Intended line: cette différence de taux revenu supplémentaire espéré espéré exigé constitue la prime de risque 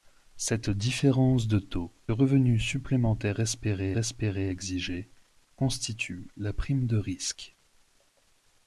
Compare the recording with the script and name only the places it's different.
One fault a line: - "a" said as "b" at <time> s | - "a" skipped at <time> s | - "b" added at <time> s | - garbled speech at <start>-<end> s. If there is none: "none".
none